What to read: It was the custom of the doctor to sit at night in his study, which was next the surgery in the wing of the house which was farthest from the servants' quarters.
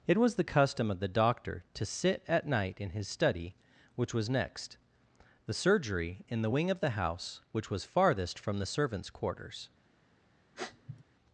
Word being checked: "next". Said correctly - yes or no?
yes